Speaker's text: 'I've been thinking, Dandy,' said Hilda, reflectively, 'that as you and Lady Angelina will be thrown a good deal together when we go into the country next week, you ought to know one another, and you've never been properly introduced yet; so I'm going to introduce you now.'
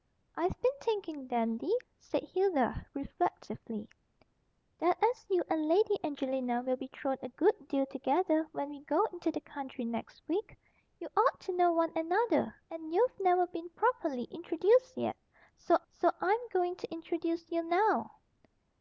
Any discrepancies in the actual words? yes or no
yes